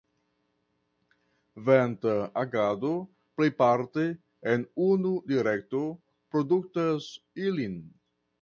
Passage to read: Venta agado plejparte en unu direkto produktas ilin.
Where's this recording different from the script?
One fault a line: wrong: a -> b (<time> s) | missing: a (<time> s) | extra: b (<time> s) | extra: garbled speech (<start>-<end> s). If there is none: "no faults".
no faults